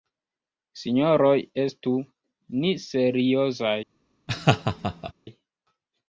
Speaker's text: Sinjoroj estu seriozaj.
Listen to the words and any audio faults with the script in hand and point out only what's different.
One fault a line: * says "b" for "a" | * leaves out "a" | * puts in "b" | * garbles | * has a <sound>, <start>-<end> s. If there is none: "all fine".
* puts in "ni"
* has a laugh, 4.3-5.1 s